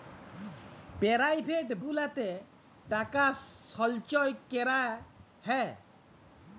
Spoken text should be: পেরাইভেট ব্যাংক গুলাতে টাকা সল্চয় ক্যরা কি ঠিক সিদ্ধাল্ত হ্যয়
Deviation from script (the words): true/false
true